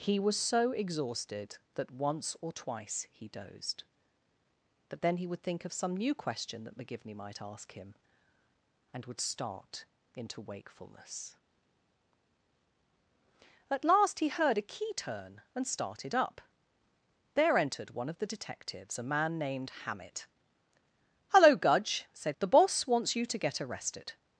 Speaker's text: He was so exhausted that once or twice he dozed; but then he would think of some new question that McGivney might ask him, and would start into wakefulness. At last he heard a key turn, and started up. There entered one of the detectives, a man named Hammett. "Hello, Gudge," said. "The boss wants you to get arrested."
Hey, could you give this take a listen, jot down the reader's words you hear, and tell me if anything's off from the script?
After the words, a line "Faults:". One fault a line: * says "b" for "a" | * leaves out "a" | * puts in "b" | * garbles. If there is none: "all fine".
He was so exhausted that once or twice he dozed; but then he would think of some new question that McGivney might ask him, and would start into wakefulness. At last he heard a key turn, and started up. There entered one of the detectives, a man named Hammett. "Hello, Gudge," said. "The boss wants you to get arrested."
Faults:
all fine